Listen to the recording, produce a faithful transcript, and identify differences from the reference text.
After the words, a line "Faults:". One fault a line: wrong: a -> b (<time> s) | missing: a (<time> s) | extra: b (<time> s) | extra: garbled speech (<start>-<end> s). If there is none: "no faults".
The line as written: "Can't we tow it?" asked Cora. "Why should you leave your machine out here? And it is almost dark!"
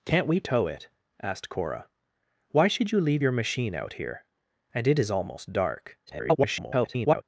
"Can't we tow it?" asked Cora. "Why should you leave your machine out here? And it is almost dark!" [garbled]
Faults:
extra: garbled speech (6.1-7.2 s)